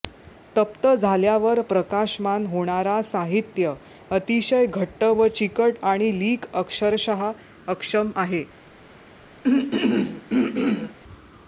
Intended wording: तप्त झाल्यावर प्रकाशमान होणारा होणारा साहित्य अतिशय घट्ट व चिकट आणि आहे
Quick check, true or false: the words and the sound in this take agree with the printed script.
false